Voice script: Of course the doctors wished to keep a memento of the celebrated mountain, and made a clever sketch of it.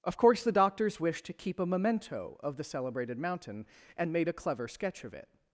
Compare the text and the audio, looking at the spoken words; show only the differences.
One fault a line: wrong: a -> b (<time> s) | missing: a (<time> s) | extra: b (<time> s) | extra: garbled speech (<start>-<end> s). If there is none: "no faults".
no faults